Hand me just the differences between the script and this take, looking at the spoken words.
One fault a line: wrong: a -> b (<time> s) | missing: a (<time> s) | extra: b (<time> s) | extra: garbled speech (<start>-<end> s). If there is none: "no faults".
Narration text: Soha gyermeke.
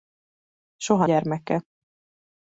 no faults